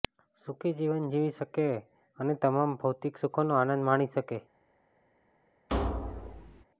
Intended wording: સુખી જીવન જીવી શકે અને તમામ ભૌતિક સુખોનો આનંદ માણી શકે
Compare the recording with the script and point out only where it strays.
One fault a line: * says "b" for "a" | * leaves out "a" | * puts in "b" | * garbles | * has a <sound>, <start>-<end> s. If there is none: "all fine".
* has a thud, 5.7-6.6 s